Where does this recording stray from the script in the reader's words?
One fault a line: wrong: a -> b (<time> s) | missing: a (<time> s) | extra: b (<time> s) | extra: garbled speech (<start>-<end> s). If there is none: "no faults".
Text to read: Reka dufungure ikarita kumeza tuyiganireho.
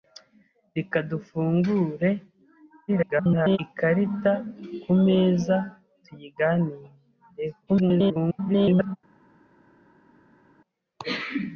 extra: garbled speech (2.9-3.6 s)
extra: garbled speech (7.7-9.0 s)